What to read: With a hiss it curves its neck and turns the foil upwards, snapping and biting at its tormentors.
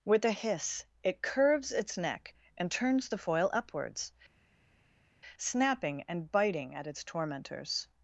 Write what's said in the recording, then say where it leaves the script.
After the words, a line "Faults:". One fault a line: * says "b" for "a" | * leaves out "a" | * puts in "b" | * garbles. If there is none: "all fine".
With a hiss it curves its neck and turns the foil upwards, snapping and biting at its tormentors.
Faults:
all fine